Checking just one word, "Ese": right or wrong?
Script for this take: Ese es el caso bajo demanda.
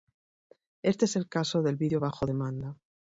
wrong